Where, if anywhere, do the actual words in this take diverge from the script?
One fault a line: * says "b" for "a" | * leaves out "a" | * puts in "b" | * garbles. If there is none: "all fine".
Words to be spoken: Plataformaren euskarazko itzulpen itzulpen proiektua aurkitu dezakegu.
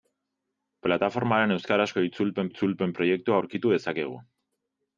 all fine